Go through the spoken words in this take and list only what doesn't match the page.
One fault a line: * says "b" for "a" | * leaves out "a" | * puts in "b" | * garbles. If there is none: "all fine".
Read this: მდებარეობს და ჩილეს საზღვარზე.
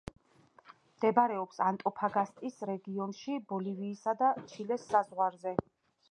* puts in "ანტოფაგასტის რეგიონში ბოლივიისა"